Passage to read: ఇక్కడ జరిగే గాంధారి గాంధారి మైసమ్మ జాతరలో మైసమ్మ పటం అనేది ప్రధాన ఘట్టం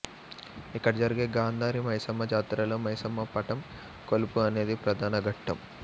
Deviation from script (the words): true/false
true